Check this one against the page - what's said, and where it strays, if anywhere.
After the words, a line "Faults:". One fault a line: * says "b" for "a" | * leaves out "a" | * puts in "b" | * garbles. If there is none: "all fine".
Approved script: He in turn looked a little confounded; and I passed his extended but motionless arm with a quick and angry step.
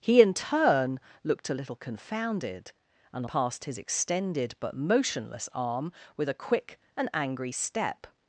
He in turn looked a little confounded; and passed his extended but motionless arm with a quick and angry step.
Faults:
* leaves out "I"